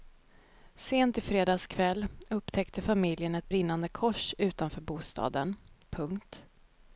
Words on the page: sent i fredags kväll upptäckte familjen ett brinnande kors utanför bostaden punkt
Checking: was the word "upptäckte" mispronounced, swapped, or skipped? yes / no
no